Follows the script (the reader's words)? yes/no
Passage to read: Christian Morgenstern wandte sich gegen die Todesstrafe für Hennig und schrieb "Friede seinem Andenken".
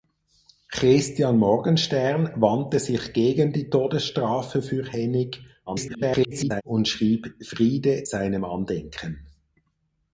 no